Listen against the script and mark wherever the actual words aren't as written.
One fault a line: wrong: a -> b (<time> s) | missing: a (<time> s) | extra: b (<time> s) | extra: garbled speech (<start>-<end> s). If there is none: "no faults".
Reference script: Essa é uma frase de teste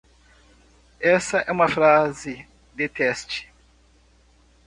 no faults